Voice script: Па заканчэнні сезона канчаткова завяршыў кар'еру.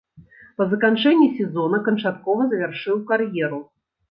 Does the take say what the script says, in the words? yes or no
yes